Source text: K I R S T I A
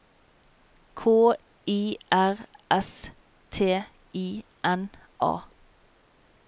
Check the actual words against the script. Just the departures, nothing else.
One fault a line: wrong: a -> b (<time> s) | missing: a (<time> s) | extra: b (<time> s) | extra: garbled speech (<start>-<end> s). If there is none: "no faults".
extra: N (4.6 s)